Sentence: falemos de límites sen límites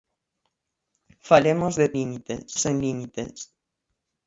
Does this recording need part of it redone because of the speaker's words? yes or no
no